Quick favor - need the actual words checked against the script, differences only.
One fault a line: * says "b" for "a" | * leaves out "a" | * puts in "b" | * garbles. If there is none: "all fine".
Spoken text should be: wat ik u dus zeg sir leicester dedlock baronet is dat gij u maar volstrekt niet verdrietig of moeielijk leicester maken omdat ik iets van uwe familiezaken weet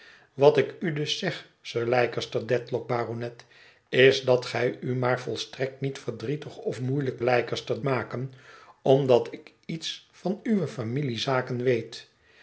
all fine